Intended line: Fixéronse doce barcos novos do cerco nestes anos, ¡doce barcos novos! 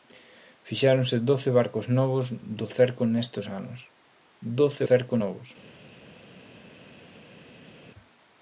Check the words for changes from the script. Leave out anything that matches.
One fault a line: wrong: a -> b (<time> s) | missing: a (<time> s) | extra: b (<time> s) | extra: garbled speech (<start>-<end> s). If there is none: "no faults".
wrong: barcos -> cerco (4.9 s)